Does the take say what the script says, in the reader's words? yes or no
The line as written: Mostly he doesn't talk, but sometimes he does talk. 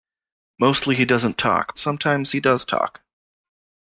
no